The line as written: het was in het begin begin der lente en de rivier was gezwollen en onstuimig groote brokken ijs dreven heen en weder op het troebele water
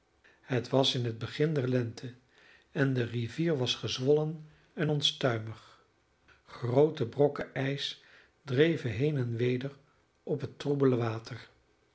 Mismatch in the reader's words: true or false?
true